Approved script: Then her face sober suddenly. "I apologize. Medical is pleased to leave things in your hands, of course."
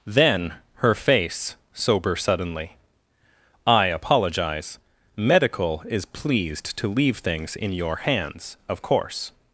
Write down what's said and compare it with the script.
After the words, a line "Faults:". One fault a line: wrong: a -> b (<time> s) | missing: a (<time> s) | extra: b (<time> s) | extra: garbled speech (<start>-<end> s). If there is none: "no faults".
Then her face sober suddenly. "I apologize. Medical is pleased to leave things in your hands, of course."
Faults:
no faults